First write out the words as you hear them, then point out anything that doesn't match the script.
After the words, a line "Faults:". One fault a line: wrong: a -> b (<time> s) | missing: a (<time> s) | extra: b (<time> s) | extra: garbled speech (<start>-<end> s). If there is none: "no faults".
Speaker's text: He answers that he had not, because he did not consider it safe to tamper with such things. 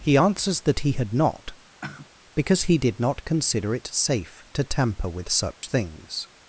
He answers that he had not, because he did not consider it safe to tamper with such things.
Faults:
no faults